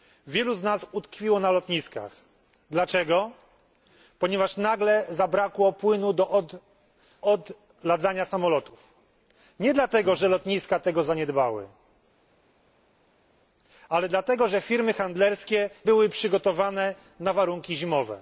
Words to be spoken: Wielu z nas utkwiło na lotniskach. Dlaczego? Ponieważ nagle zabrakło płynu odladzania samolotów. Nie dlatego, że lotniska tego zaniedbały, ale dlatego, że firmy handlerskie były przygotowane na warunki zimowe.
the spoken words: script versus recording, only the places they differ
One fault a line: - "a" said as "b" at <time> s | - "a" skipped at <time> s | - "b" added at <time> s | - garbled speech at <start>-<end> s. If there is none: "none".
none